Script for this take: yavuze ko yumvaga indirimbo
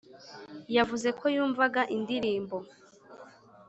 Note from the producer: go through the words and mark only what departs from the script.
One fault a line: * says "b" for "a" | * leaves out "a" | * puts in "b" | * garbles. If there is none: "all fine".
all fine